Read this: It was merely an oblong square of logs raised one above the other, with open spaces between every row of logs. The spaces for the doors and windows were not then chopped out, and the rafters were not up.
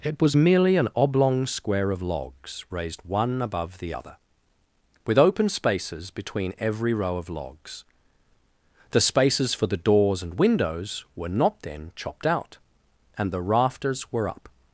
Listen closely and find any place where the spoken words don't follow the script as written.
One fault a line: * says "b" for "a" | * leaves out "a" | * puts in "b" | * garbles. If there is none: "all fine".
* leaves out "not"